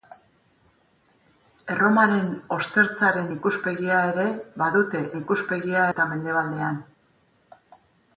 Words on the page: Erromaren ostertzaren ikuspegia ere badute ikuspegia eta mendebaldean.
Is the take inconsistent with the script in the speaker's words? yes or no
no